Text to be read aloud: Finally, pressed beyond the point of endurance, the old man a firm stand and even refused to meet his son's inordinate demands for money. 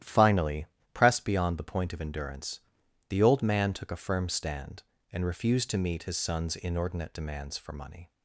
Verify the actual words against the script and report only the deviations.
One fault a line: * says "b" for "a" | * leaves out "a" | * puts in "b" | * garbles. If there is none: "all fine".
* puts in "took"
* leaves out "even"